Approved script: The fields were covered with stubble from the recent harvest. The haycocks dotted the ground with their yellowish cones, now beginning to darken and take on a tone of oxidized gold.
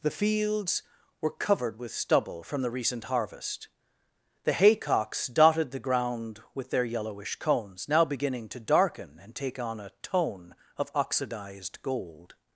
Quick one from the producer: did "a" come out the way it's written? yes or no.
yes